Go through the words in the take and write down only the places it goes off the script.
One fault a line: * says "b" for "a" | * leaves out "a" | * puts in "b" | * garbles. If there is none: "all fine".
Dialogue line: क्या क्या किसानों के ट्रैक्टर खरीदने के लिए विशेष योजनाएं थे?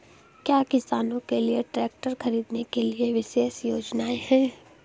* leaves out "क्या"
* puts in "लिए"
* says "हैं" for "थे"